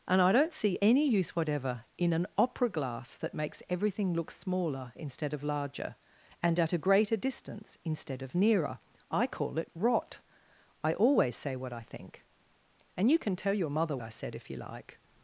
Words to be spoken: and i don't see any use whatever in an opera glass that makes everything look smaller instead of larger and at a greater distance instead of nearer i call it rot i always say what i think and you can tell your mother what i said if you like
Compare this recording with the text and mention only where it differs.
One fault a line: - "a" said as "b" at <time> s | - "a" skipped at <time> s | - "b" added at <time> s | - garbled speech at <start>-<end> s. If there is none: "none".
- "what" skipped at 14.0 s